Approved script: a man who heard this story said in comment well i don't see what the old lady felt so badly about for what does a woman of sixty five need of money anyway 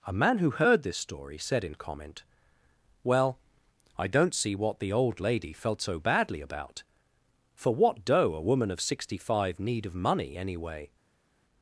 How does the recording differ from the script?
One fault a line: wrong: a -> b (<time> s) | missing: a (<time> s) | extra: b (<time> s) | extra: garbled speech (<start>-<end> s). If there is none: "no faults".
wrong: does -> doe (8.1 s)